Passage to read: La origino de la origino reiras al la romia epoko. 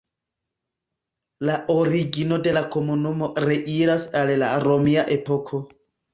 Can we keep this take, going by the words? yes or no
no